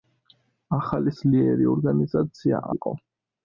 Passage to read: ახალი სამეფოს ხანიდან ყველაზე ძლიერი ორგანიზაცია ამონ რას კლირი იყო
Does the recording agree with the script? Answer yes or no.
no